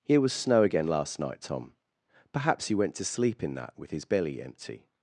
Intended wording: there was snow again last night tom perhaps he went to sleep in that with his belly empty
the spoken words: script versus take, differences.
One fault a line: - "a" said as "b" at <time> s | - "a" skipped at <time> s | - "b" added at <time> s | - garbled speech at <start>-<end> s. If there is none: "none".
- "there" said as "here" at 0.0 s